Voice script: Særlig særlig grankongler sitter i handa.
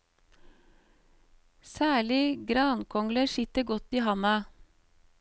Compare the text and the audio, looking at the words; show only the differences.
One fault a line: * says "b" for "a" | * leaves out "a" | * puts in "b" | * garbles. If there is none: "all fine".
* leaves out "særlig"
* puts in "godt"